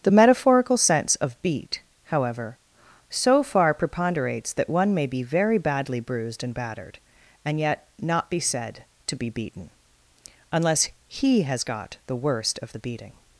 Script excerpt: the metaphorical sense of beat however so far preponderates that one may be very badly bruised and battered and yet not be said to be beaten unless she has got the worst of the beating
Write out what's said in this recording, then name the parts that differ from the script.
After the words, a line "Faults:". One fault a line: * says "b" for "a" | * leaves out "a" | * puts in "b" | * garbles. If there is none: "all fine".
the metaphorical sense of beat however so far preponderates that one may be very badly bruised and battered and yet not be said to be beaten unless he has got the worst of the beating
Faults:
* says "he" for "she"